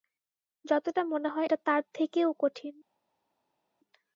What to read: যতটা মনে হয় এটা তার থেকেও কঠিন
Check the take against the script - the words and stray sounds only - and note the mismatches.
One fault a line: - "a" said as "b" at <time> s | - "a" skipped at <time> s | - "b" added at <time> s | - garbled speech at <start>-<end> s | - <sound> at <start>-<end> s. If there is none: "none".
none